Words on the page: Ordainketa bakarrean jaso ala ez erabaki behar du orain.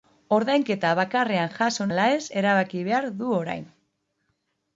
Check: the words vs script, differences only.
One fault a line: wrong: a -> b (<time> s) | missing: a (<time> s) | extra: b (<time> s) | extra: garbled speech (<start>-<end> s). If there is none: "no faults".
no faults